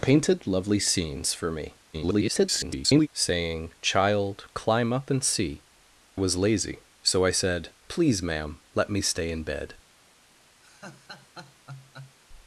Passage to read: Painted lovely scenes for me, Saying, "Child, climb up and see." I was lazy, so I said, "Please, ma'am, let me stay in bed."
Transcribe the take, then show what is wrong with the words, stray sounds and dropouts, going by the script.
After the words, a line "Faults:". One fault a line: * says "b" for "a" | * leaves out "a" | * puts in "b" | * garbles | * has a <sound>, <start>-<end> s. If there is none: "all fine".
Painted lovely scenes for me, [garbled] Saying, "Child, climb up and see." was lazy, so I said, "Please, ma'am, let me stay in bed."
Faults:
* garbles
* leaves out "I"
* has a laugh, 10.6-12.2 s